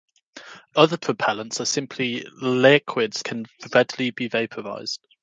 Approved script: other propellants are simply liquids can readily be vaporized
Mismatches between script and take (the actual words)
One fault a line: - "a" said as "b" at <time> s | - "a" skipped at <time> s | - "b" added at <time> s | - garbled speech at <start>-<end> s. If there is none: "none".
none